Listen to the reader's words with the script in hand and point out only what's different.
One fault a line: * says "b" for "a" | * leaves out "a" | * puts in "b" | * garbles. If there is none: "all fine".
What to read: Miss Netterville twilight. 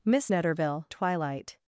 all fine